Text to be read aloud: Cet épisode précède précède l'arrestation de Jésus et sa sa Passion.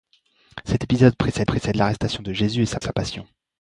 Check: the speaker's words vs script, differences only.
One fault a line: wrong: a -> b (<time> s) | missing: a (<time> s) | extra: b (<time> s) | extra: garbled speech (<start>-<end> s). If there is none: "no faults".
no faults